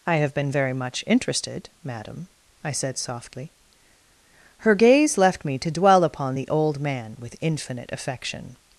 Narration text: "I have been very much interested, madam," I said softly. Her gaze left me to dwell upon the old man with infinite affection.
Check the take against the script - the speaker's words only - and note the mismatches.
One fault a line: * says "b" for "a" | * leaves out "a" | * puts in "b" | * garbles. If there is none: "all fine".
all fine